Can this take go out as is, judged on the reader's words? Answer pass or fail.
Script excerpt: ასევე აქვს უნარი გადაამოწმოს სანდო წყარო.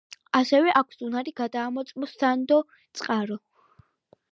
pass